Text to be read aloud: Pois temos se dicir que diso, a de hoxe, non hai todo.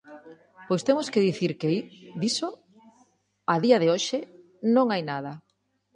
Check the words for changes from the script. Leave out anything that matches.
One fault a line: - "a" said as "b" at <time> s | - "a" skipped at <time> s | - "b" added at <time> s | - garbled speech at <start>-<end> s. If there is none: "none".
- "se" said as "que" at 1.1 s
- "día" added at 3.6 s
- "todo" said as "nada" at 5.1 s